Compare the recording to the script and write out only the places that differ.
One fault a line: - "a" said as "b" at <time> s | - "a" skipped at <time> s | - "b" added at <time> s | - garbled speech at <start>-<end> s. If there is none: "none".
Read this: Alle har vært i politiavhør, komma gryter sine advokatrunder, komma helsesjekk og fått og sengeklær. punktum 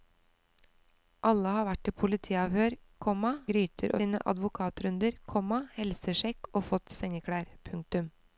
none